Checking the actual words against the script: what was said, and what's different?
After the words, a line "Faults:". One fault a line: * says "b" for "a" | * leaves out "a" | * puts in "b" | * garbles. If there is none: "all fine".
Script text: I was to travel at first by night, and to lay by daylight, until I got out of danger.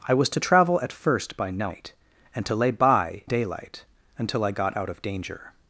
I was to travel at first by night, and to lay by daylight, until I got out of danger.
Faults:
all fine